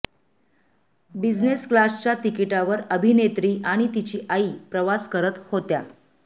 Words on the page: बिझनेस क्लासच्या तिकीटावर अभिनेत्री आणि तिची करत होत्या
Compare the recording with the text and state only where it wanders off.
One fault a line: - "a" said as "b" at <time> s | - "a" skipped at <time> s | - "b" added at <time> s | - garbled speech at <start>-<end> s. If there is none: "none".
- "आई प्रवास" added at 4.3 s